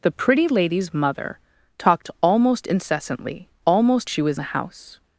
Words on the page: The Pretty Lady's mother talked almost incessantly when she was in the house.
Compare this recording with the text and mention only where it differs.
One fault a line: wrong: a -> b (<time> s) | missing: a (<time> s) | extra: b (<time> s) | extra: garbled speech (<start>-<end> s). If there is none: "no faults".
wrong: when -> almost (3.7 s)
missing: in (4.4 s)